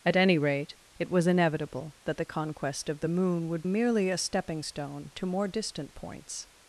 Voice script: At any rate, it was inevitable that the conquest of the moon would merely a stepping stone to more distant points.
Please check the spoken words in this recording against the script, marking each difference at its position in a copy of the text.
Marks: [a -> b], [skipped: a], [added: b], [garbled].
At any rate, it was inevitable that the conquest of the moon would merely a stepping stone to more distant points.